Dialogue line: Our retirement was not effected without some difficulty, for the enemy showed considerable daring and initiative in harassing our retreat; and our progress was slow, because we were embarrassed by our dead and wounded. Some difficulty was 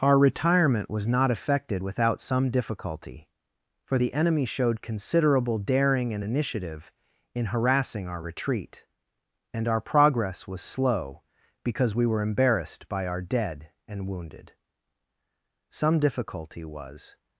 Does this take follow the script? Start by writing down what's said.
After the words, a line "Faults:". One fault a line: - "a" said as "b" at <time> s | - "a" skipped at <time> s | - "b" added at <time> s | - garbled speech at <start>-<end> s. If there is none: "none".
Our retirement was not effected without some difficulty, for the enemy showed considerable daring and initiative in harassing our retreat; and our progress was slow, because we were embarrassed by our dead and wounded. Some difficulty was
Faults:
none